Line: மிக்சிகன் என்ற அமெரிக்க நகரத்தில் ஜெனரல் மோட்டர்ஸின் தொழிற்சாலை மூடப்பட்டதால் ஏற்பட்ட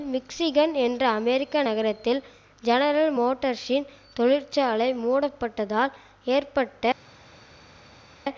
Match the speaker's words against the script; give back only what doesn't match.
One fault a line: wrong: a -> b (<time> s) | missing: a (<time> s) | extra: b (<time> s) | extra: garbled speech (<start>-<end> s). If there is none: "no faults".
no faults